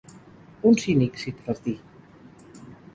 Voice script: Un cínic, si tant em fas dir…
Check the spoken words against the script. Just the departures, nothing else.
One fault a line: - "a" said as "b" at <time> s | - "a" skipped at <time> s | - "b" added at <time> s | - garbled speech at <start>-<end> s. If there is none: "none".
- "tant" skipped at 1.3 s